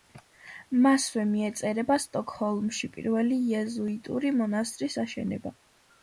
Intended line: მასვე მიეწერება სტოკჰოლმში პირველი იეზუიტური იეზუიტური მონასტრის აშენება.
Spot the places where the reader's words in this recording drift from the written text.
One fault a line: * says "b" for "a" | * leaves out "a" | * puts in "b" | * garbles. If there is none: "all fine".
* leaves out "იეზუიტური"